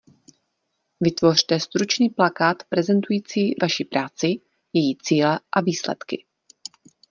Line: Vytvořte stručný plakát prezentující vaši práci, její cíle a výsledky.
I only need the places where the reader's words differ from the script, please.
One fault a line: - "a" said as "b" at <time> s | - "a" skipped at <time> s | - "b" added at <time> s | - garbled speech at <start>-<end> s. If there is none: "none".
none